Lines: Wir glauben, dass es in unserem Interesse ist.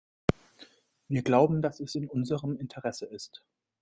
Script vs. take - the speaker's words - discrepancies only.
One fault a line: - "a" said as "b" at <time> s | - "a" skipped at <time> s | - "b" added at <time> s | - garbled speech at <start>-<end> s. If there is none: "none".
none